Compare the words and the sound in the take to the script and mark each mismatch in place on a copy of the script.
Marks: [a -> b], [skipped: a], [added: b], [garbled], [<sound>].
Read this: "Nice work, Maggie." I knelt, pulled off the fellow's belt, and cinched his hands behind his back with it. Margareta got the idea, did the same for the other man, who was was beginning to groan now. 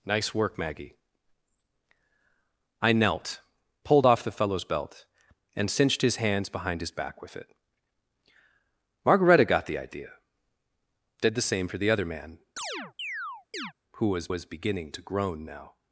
"Nice work, Maggie." I knelt, pulled off the fellow's belt, and cinched his hands behind his back with it. Margareta got the idea, did the same for the other man, [chirp] who was was beginning to groan now.